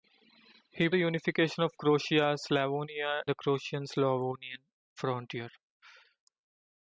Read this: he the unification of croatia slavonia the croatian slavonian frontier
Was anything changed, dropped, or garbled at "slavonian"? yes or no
no